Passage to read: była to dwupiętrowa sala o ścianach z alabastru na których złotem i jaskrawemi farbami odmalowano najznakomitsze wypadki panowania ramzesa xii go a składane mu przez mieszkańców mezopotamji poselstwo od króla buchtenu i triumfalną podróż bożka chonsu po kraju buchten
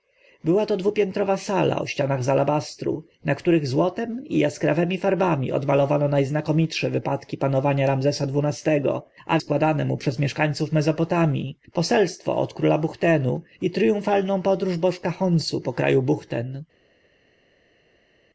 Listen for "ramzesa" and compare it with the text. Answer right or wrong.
right